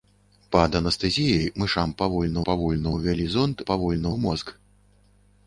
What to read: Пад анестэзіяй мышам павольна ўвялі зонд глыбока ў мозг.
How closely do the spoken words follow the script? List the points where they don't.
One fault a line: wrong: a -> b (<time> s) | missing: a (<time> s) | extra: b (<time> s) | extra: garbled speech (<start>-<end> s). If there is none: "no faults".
extra: павольна (2.5 s)
wrong: глыбока -> павольна (3.7 s)